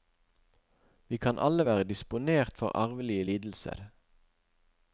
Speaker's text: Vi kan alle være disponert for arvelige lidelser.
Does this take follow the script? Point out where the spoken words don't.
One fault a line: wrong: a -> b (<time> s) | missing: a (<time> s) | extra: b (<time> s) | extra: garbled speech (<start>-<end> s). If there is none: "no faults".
no faults